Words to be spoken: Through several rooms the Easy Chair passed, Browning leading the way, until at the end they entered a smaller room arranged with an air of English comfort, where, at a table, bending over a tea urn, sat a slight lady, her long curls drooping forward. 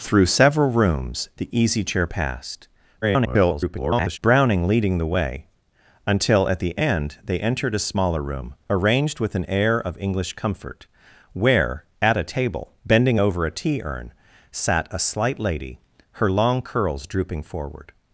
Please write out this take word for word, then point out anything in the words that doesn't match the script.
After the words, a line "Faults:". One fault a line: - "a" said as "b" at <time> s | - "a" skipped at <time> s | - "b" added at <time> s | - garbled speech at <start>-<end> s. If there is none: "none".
Through several rooms the Easy Chair passed, [garbled] Browning leading the way, until at the end they entered a smaller room arranged with an air of English comfort, where, at a table, bending over a tea urn, sat a slight lady, her long curls drooping forward.
Faults:
- garbled speech at 3.0-4.2 s